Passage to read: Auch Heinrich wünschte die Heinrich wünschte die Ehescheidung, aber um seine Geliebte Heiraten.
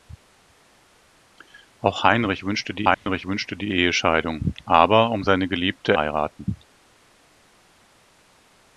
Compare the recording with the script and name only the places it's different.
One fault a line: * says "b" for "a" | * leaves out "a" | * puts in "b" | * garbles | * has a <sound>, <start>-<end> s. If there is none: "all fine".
* has a dropout, 2.9-3.1 s